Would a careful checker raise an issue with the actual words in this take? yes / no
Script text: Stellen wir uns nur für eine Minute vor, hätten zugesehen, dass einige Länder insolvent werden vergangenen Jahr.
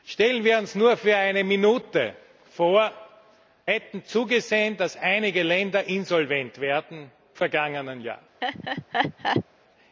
no